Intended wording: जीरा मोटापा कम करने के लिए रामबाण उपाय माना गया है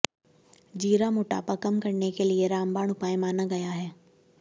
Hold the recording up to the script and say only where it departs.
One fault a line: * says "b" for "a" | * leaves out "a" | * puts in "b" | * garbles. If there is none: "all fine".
all fine